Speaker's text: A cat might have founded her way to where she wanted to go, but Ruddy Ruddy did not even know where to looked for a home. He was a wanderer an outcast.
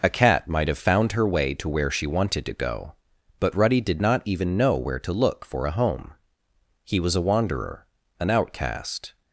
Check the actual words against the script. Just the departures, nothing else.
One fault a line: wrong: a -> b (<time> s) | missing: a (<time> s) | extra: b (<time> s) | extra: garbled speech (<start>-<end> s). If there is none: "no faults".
wrong: founded -> found (0.8 s)
missing: Ruddy (3.8 s)
wrong: looked -> look (5.1 s)